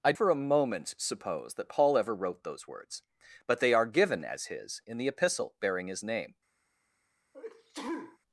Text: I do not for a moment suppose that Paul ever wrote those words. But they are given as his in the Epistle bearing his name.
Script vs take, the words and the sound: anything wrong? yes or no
yes